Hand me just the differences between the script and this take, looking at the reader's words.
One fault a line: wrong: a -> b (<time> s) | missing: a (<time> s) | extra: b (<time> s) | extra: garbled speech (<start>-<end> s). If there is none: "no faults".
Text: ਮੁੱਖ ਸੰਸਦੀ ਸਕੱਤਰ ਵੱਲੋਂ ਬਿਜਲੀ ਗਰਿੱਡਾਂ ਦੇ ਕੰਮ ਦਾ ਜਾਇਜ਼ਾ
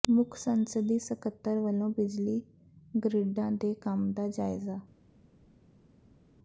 no faults